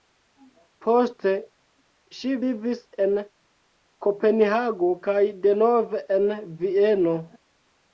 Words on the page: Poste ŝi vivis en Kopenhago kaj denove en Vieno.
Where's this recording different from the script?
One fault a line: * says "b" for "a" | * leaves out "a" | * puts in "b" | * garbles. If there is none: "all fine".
all fine